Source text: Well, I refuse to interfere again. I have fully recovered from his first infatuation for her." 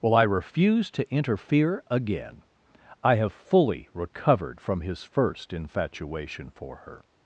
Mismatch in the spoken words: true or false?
false